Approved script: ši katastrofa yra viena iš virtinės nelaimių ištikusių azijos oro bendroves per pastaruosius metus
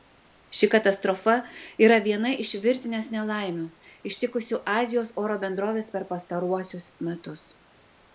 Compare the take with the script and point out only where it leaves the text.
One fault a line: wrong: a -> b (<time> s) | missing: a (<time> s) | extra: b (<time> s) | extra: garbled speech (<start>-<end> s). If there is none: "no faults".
no faults